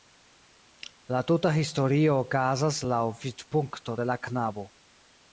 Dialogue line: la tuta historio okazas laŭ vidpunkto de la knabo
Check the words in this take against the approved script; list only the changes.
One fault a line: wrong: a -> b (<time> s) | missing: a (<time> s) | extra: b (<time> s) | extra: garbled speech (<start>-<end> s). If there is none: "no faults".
no faults